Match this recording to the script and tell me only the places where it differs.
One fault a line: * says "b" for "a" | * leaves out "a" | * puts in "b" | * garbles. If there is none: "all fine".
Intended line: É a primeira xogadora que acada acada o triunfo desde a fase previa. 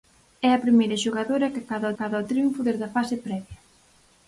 all fine